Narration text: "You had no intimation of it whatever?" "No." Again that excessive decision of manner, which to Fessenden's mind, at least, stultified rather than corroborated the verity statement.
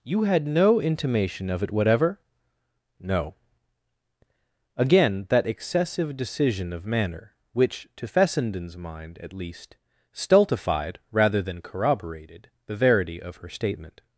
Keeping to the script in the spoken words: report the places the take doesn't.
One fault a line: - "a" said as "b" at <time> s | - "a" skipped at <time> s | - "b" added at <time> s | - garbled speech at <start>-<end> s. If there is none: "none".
- "of her" added at 13.2 s